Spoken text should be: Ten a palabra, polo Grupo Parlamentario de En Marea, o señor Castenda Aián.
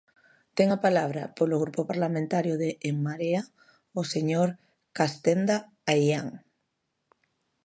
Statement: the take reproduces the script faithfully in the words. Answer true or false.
true